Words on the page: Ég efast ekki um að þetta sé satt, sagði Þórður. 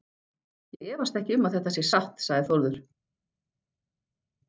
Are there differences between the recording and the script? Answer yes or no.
no